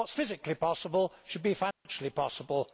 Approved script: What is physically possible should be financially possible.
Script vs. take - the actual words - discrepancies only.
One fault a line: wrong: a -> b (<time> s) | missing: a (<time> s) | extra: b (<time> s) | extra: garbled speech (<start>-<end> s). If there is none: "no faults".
no faults